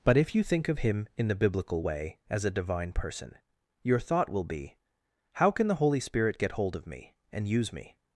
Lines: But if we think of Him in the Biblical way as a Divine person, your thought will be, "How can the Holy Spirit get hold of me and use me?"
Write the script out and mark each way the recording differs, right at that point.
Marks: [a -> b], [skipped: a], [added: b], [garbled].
But if [we -> you] think of Him in the Biblical way as a Divine person, your thought will be, "How can the Holy Spirit get hold of me and use me?"